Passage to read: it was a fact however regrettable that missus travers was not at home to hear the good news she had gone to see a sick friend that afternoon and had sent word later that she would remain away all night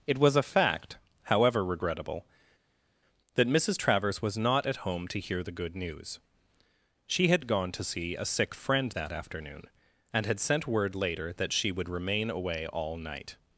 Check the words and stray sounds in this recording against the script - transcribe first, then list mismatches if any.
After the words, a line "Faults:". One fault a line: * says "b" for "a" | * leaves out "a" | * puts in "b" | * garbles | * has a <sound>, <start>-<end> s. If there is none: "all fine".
it was a fact however regrettable that missus travers was not at home to hear the good news she had gone to see a sick friend that afternoon and had sent word later that she would remain away all night
Faults:
all fine